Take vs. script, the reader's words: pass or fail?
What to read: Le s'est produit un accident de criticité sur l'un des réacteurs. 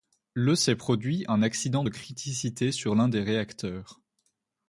pass